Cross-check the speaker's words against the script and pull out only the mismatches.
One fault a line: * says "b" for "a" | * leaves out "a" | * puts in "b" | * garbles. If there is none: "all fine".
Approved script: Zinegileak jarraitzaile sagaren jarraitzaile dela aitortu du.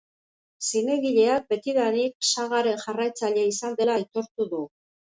* says "betidanik" for "jarraitzaile"
* puts in "izan"